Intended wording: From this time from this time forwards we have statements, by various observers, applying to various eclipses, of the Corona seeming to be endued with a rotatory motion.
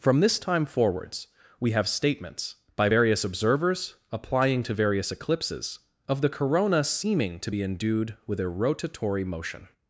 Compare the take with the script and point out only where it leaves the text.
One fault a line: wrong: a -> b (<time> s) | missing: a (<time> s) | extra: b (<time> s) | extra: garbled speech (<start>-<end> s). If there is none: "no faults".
missing: from this time (0.7 s)